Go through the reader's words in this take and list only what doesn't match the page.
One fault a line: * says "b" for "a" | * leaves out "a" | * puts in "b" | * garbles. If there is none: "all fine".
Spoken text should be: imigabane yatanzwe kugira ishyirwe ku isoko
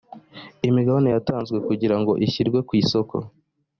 * puts in "ngo"